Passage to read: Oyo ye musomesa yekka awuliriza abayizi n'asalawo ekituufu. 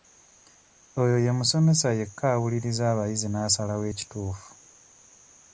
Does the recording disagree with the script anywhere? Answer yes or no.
no